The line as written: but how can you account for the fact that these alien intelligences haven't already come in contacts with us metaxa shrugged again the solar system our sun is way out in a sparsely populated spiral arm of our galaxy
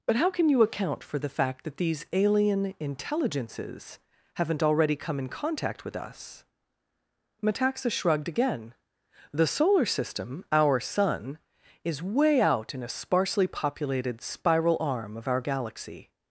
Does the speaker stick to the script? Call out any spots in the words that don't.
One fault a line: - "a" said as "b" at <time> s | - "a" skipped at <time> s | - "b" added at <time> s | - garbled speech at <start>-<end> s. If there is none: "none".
- "contacts" said as "contact" at 5.3 s